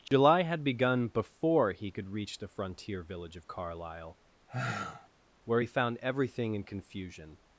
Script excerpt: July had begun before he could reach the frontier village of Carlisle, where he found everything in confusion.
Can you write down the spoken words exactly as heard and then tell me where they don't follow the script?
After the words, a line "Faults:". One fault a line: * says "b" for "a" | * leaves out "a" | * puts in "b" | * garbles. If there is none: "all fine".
July had begun before he could reach the frontier village of Carlisle, where he found everything in confusion.
Faults:
all fine